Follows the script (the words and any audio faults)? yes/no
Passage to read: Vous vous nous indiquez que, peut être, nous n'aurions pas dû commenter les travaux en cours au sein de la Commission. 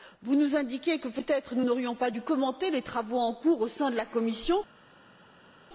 no